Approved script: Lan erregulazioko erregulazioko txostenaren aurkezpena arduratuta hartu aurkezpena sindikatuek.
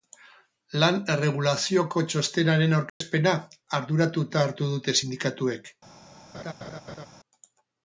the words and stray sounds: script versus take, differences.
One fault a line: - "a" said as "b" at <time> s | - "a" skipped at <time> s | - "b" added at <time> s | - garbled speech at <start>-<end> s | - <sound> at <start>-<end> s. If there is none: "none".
- "erregulazioko" skipped at 2.0 s
- dropout at 2.9-3.0 s
- "aurkezpena" said as "dute" at 4.8 s
- laugh at 6.3-7.1 s